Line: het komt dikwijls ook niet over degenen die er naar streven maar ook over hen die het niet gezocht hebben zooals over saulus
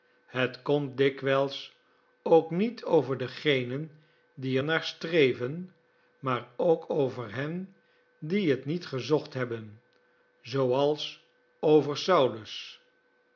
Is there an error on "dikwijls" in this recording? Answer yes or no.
no